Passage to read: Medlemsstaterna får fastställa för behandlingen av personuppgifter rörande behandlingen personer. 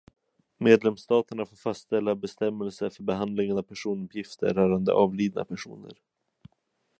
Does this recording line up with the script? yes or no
no